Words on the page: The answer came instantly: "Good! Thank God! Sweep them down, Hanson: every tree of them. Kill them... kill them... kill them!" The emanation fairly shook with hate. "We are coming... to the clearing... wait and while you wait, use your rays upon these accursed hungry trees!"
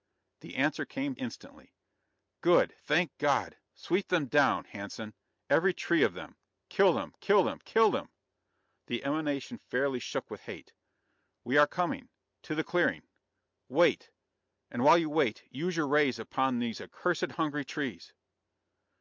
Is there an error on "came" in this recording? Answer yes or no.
no